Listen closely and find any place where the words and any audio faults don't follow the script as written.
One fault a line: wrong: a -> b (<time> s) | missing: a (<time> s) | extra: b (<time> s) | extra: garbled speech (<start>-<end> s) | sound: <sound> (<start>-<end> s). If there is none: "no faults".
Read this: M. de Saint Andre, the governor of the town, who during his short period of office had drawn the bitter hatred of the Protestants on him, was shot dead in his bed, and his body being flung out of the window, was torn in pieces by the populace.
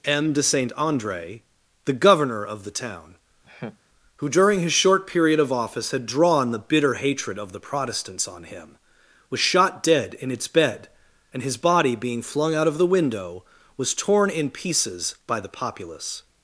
sound: laugh (3.4-3.8 s)
wrong: his -> its (10.3 s)